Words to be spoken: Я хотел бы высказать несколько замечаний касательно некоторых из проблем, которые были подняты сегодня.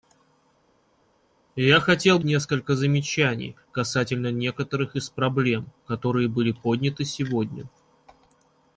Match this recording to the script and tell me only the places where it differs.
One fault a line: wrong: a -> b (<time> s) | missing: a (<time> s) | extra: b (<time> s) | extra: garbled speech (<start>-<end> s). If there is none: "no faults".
missing: бы высказать (2.2 s)